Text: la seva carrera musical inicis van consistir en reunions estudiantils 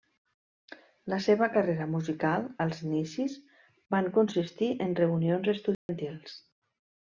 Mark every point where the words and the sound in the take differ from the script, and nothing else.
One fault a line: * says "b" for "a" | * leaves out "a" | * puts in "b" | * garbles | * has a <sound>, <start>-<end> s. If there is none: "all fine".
* puts in "als"
* has a dropout, 5.7-5.9 s